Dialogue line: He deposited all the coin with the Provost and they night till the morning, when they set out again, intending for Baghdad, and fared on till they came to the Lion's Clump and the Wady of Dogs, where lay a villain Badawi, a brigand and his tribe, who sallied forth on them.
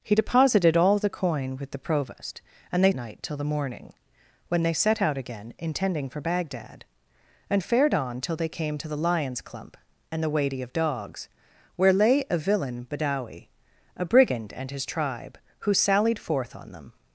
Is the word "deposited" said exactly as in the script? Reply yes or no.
yes